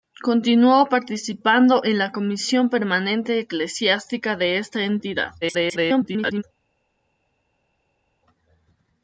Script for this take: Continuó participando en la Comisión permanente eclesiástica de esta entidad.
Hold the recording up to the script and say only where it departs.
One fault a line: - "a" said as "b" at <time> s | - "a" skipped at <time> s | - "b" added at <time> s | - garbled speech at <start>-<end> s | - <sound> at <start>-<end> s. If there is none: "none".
- garbled speech at 5.4-6.4 s